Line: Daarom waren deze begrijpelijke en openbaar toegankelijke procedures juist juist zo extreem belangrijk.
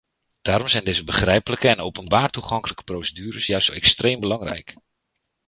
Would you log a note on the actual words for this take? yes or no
yes